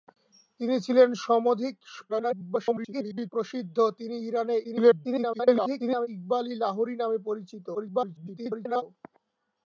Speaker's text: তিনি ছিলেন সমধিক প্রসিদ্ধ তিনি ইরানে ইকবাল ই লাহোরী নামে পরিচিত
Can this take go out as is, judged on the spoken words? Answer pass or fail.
fail